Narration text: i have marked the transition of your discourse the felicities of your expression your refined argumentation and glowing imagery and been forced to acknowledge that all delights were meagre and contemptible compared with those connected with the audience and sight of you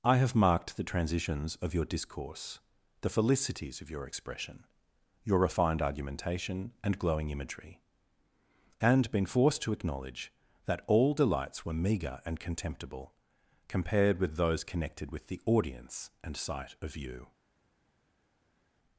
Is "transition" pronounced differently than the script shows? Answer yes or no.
yes